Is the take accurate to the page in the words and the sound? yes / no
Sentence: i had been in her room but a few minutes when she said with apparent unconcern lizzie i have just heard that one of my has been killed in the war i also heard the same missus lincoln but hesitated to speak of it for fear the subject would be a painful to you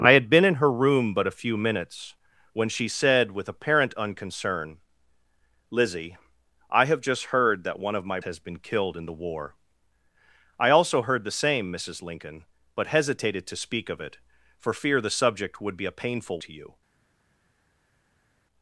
yes